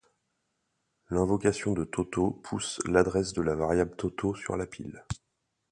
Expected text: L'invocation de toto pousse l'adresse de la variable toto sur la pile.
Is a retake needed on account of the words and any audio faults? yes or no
no